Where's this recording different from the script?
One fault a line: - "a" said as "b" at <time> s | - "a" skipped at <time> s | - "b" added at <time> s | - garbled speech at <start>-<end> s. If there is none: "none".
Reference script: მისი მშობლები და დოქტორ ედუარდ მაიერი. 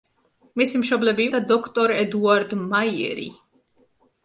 none